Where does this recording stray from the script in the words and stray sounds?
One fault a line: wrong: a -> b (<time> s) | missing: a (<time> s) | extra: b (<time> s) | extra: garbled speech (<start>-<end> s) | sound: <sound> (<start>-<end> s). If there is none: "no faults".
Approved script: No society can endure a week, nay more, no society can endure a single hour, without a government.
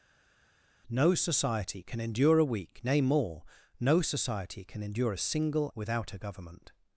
missing: hour (5.7 s)